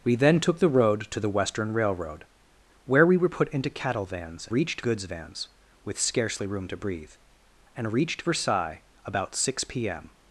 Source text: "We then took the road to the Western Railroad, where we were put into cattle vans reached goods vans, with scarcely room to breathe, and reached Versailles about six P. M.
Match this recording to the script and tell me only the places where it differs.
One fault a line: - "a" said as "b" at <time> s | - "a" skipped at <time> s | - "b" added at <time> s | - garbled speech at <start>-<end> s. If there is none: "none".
none